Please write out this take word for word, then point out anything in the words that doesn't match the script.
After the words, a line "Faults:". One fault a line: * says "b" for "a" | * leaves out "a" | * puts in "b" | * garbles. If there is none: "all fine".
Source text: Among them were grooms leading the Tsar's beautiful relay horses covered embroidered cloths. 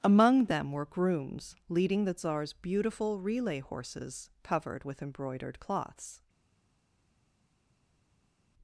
Among them were grooms leading the Tsar's beautiful relay horses covered with embroidered cloths.
Faults:
* puts in "with"